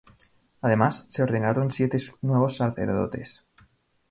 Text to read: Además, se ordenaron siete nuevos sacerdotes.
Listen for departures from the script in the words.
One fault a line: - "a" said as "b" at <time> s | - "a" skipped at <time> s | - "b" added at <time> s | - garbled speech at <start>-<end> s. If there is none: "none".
none